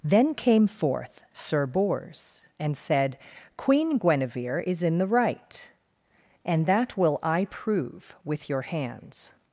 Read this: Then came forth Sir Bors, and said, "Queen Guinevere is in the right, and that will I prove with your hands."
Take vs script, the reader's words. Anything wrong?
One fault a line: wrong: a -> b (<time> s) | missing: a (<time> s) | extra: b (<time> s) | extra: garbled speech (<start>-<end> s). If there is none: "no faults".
no faults